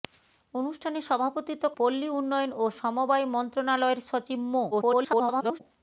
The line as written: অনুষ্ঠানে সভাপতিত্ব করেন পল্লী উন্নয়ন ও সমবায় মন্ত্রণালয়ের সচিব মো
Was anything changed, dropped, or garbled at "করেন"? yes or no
yes